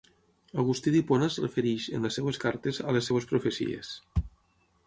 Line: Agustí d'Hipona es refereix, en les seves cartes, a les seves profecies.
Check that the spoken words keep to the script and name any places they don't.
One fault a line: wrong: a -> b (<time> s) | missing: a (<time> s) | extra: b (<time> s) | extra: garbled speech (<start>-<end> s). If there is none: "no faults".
no faults